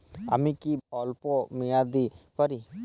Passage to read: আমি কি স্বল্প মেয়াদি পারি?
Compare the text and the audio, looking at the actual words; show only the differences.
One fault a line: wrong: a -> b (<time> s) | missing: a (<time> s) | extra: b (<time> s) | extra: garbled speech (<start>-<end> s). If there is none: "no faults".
no faults